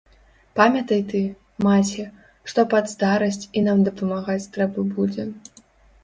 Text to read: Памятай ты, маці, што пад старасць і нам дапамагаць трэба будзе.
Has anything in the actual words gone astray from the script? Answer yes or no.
no